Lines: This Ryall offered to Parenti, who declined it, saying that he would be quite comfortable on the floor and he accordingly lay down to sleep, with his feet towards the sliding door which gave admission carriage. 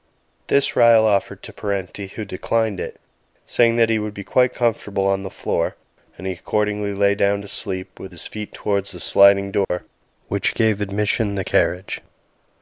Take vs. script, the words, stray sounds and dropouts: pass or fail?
fail